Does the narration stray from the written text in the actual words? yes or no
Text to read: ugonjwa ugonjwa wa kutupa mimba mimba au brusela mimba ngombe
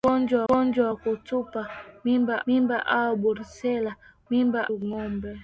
no